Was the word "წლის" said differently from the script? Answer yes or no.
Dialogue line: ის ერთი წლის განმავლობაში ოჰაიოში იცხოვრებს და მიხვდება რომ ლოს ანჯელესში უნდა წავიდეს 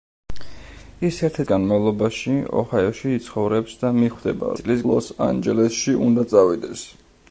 yes